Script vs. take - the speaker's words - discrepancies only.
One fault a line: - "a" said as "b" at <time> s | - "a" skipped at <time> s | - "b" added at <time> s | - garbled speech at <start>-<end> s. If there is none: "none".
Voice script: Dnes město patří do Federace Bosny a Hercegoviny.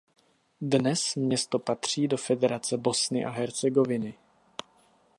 none